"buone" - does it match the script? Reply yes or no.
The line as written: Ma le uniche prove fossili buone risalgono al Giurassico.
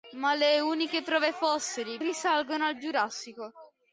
no